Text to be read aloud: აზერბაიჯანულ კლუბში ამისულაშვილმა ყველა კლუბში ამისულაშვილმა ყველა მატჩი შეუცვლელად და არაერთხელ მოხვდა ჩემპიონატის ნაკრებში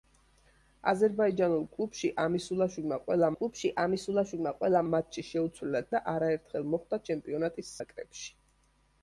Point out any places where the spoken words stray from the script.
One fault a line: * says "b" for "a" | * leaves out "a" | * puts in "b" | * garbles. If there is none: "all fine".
all fine